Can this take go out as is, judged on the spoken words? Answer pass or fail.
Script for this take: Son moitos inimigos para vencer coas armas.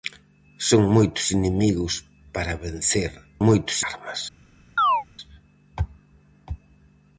fail